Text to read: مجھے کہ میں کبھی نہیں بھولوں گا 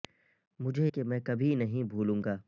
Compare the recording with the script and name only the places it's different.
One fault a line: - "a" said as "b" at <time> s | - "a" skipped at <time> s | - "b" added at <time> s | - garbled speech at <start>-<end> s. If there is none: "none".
none